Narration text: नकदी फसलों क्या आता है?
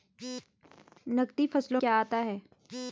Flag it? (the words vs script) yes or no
no